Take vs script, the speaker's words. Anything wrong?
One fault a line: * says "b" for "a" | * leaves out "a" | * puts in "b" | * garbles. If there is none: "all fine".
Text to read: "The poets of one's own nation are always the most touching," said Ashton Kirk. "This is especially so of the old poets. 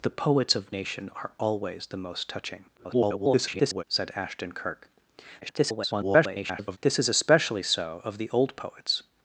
* leaves out "one's own"
* garbles
* garbles